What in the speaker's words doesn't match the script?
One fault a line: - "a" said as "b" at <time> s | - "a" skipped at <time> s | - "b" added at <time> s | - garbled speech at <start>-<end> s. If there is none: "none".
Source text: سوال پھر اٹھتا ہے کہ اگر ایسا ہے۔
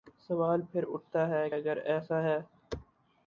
- "کہ" skipped at 1.5 s